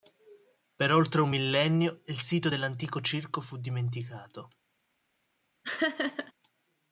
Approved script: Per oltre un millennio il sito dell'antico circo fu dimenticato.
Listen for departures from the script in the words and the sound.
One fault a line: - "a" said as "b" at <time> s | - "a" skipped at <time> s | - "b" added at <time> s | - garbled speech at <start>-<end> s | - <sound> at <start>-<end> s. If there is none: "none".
- laugh at 5.6-6.3 s